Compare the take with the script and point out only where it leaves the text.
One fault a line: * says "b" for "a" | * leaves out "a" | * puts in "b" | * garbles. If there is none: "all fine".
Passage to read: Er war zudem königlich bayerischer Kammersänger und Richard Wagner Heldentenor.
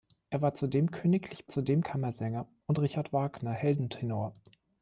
* says "zudem" for "bayerischer"